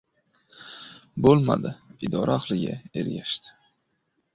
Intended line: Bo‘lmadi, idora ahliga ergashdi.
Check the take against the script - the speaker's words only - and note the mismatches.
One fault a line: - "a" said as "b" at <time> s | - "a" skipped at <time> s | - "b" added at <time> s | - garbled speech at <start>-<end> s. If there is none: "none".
none